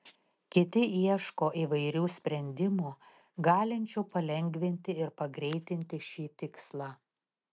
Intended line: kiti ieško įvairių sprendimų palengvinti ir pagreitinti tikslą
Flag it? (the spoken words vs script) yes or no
yes